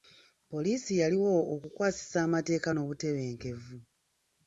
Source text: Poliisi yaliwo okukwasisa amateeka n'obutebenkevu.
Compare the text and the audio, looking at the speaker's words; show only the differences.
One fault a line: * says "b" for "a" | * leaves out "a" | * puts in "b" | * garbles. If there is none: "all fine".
all fine